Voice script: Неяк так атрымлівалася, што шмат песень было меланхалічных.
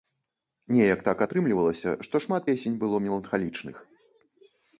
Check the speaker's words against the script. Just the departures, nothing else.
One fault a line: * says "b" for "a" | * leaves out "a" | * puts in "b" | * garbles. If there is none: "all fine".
all fine